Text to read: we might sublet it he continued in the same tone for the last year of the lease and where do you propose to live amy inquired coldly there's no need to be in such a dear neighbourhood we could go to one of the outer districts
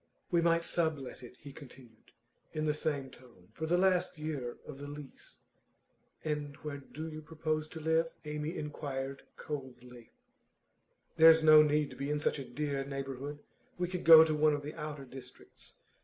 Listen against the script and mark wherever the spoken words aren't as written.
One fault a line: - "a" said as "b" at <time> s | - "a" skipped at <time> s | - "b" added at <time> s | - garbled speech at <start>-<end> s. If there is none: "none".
none